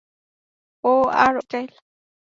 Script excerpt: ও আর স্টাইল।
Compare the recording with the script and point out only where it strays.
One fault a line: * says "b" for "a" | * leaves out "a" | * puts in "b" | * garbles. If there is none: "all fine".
all fine